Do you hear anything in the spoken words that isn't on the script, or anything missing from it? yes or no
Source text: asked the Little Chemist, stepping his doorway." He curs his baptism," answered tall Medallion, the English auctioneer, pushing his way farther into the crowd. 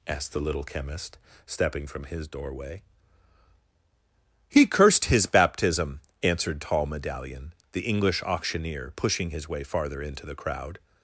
yes